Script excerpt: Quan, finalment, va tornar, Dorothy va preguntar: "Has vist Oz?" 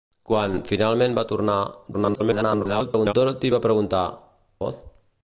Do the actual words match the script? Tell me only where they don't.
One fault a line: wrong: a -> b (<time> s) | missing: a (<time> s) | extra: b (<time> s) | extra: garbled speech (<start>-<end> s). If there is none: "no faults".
extra: garbled speech (1.9-3.1 s)
missing: Has vist (4.0 s)